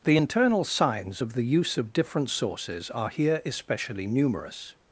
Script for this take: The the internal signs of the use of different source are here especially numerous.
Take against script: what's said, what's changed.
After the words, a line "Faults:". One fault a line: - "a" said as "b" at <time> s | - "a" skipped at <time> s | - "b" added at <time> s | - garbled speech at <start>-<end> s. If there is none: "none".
The internal signs of the use of different sources are here especially numerous.
Faults:
- "the" skipped at 0.2 s
- "source" said as "sources" at 2.3 s